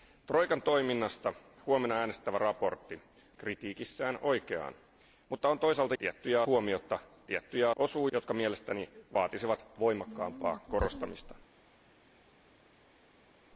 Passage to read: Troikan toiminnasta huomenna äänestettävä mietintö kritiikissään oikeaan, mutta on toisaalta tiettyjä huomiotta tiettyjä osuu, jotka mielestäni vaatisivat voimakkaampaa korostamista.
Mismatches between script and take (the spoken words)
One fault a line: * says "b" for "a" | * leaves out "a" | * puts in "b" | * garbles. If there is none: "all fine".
all fine